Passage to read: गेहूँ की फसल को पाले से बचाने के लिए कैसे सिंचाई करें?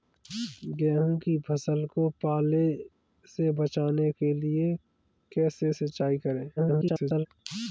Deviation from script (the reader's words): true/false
true